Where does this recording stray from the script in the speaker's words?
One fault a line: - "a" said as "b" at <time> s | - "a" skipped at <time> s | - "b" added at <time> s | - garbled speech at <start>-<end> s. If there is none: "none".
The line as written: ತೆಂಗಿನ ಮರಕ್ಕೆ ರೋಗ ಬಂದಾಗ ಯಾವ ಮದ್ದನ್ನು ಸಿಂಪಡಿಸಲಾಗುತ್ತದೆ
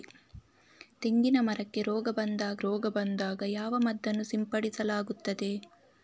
- "ರೋಗ ಬಂದಾಗ" added at 2.6 s